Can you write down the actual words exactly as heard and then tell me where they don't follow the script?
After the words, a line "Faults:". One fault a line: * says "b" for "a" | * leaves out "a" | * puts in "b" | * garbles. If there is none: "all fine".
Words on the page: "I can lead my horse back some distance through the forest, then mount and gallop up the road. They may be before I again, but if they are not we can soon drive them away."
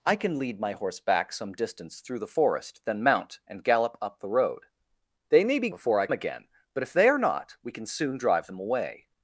"I can lead my horse back some distance through the forest, then mount and gallop up the road. They may be before I again, but if they are not we can soon drive them away."
Faults:
all fine